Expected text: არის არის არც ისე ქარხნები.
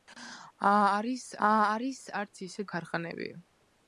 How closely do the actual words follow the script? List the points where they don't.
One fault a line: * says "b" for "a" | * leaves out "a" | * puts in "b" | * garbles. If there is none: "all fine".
all fine